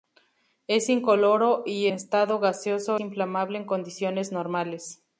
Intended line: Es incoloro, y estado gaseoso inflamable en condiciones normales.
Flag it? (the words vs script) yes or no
no